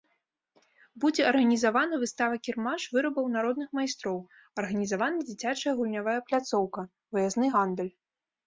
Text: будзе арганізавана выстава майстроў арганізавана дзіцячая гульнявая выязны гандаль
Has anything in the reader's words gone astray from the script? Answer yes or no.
yes